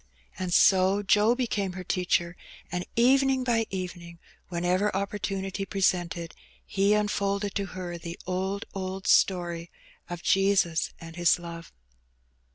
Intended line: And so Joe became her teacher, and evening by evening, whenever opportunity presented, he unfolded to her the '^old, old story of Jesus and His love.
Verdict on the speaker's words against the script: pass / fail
pass